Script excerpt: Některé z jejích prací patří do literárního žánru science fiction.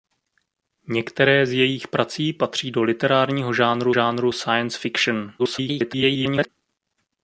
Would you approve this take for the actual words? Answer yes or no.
no